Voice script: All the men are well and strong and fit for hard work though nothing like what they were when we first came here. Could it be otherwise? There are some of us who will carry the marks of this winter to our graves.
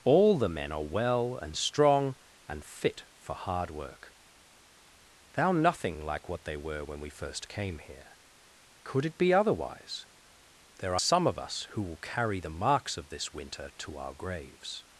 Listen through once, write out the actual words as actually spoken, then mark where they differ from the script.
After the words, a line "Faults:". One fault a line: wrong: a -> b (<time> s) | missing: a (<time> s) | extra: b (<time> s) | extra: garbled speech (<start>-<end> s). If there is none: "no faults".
All the men are well and strong and fit for hard work thou nothing like what they were when we first came here. Could it be otherwise? There are some of us who will carry the marks of this winter to our graves.
Faults:
wrong: though -> thou (5.3 s)